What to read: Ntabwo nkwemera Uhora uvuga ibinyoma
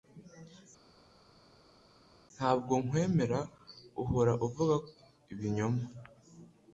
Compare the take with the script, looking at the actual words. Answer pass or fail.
pass